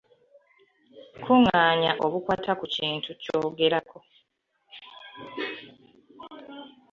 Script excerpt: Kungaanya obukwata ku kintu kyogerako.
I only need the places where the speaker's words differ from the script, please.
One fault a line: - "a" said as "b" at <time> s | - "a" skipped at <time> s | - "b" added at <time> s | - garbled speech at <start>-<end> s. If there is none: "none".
none